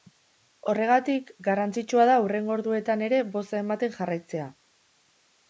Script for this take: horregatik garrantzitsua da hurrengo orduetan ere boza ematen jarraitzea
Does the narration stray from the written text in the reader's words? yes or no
no